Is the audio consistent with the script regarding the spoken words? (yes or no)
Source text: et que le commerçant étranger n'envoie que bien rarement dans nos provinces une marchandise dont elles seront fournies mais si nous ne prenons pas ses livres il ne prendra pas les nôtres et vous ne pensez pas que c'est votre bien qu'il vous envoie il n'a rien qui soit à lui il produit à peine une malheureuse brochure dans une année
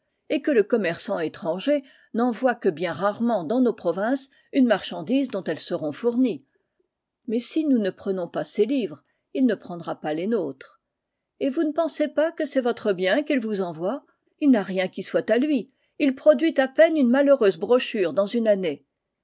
yes